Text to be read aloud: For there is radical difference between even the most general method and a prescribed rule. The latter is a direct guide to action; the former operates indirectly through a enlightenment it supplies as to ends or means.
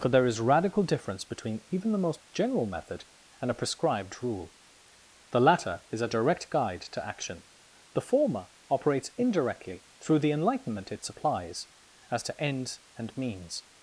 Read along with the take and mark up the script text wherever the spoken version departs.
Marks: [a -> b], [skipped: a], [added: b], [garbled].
For there is radical difference between even the most general method and a prescribed rule. The latter is a direct guide to action; the former operates indirectly through [a -> the] enlightenment it supplies as to ends [or -> and] means.